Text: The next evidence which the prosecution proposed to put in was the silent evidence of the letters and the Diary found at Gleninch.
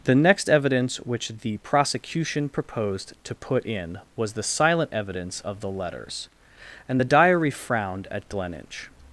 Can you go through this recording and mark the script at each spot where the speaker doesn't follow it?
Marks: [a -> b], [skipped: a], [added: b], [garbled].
The next evidence which the prosecution proposed to put in was the silent evidence of the letters and the Diary [found -> frowned] at Gleninch.